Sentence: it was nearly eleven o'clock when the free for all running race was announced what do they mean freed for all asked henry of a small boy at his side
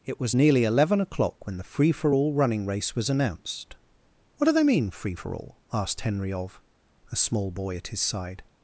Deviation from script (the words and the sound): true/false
true